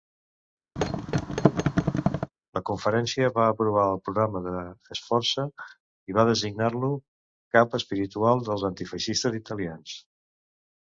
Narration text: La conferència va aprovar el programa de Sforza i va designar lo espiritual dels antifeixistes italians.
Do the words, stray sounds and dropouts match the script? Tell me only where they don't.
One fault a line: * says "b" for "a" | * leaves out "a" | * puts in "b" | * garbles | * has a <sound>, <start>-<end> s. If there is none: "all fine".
* has a thud, 0.8-2.3 s
* puts in "cap"